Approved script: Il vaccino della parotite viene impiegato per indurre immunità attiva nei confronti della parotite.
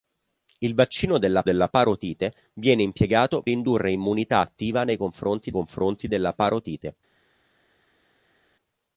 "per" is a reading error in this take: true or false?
true